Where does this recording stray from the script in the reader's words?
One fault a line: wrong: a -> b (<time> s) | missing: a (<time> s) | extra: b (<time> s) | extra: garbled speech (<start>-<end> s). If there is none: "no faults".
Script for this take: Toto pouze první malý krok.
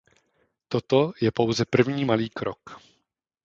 extra: je (1.2 s)